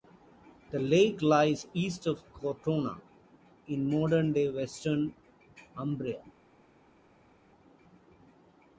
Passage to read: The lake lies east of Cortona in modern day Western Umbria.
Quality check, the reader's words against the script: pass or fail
pass